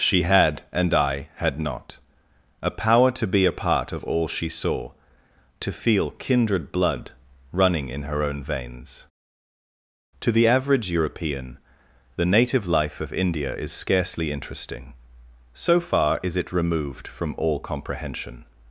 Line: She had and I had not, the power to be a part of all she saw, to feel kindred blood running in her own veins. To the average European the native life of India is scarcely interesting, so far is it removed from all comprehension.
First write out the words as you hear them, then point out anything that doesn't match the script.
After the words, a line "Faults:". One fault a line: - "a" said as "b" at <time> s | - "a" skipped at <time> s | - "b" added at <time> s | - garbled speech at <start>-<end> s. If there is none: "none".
She had and I had not, a power to be a part of all she saw, to feel kindred blood running in her own veins. To the average European the native life of India is scarcely interesting, so far is it removed from all comprehension.
Faults:
- "the" said as "a" at 2.6 s